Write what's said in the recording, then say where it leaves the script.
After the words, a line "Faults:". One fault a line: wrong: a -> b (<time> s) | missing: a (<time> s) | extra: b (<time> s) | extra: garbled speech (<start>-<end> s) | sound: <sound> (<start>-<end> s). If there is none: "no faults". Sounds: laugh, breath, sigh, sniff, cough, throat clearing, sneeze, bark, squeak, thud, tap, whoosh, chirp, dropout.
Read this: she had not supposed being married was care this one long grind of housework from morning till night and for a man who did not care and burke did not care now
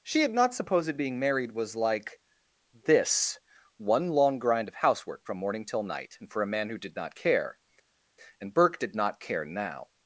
she had not supposed being married was like this one long grind of housework from morning till night and for a man who did not care and burke did not care now
Faults:
wrong: care -> like (1.8 s)